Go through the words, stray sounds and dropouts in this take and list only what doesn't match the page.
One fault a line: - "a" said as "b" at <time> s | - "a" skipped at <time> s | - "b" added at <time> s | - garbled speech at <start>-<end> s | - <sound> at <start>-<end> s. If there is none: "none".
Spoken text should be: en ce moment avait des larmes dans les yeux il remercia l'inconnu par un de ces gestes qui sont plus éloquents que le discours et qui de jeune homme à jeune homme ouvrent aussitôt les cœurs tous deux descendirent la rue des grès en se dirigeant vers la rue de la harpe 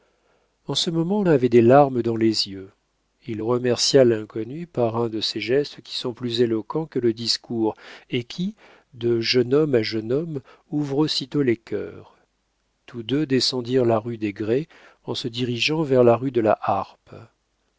none